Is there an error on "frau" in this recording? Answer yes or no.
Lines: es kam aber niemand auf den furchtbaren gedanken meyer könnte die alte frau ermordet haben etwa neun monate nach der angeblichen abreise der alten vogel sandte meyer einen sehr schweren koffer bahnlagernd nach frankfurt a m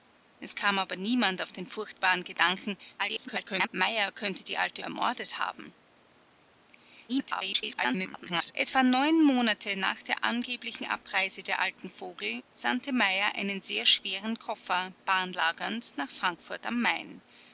yes